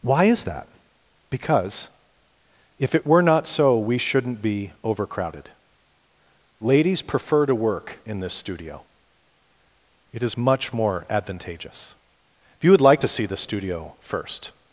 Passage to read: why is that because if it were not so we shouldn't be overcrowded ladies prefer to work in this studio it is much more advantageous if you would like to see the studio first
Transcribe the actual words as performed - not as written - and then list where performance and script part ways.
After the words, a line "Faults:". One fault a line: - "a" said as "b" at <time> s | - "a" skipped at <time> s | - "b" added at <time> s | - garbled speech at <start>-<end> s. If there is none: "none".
why is that because if it were not so we shouldn't be overcrowded ladies prefer to work in this studio it is much more advantageous if you would like to see the studio first
Faults:
none